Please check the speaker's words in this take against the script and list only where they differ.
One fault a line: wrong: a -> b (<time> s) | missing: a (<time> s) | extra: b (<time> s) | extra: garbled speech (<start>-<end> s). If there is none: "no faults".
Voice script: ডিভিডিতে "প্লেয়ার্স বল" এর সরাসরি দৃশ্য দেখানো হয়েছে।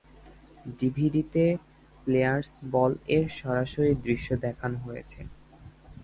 no faults